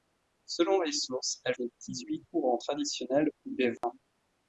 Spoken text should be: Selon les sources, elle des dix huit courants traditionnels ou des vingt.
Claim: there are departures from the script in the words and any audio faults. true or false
true